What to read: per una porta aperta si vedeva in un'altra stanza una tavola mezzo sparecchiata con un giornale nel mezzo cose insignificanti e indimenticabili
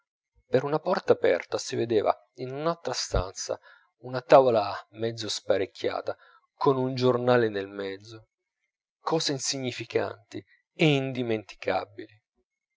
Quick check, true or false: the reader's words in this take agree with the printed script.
true